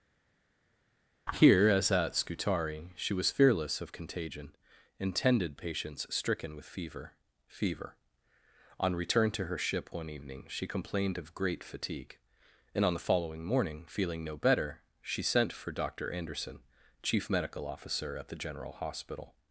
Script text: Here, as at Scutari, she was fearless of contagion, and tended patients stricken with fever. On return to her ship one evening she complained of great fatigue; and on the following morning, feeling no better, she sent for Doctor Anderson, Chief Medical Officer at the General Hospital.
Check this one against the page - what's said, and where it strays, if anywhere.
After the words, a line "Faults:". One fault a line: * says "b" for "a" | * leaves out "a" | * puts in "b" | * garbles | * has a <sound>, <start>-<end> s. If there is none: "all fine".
Here, as at Scutari, she was fearless of contagion, and tended patients stricken with fever fever. On return to her ship one evening she complained of great fatigue; and on the following morning, feeling no better, she sent for Doctor Anderson, Chief Medical Officer at the General Hospital.
Faults:
* puts in "fever"